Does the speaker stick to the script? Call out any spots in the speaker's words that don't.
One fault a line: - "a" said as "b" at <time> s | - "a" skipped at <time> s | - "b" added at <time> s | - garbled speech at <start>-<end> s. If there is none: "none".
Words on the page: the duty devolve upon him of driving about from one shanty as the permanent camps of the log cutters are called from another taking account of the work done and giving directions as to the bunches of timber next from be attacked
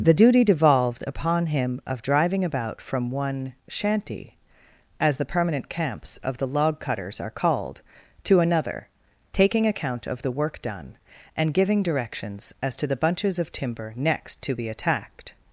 - "devolve" said as "devolved" at 0.4 s
- "from" said as "to" at 8.2 s
- "from" said as "to" at 14.4 s